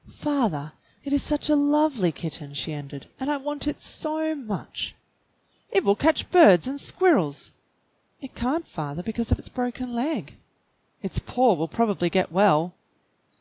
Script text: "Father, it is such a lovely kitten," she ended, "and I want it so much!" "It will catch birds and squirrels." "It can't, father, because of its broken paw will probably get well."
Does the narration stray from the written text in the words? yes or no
yes